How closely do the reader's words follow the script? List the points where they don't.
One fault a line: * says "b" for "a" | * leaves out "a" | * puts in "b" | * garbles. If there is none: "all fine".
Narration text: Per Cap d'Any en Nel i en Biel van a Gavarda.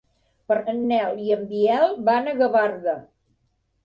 * leaves out "Cap d'Any"